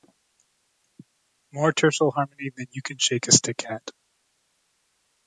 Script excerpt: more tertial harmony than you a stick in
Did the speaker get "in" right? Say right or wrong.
wrong